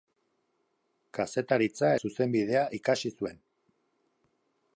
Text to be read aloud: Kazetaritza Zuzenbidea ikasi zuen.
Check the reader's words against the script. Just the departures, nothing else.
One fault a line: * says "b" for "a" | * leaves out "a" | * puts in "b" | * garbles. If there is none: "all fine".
all fine